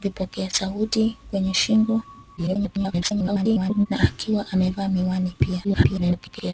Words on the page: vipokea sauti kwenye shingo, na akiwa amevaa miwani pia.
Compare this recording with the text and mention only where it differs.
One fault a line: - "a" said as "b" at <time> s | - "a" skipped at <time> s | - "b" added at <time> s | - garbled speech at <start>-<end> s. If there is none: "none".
- garbled speech at 2.4-3.9 s
- garbled speech at 5.6-6.5 s